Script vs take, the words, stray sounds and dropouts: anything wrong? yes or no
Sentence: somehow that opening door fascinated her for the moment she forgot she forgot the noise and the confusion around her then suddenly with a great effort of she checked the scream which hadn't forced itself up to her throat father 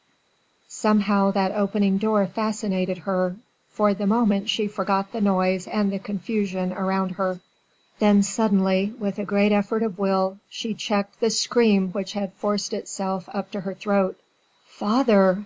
yes